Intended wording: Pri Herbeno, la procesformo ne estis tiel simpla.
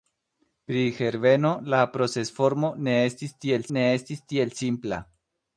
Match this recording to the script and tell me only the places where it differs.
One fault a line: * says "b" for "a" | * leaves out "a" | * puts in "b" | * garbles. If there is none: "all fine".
* puts in "ne estis tiel"